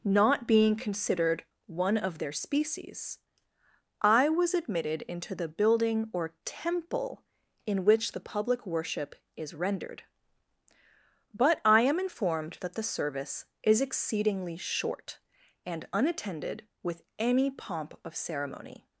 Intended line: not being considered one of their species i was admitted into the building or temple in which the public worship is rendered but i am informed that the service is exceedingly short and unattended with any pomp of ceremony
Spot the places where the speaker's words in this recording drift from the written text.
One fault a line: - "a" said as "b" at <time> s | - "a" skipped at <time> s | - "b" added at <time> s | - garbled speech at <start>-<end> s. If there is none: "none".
none